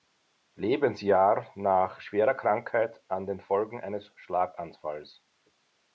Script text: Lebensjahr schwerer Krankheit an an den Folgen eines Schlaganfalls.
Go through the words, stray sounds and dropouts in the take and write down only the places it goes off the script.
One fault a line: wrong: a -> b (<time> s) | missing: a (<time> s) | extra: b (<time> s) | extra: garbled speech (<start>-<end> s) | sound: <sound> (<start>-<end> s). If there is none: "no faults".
extra: nach (1.5 s)
missing: an (3.3 s)